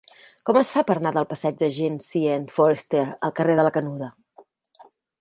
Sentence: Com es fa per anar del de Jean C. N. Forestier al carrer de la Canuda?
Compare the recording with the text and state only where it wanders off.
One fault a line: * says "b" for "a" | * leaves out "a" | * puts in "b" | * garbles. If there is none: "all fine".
* puts in "passeig"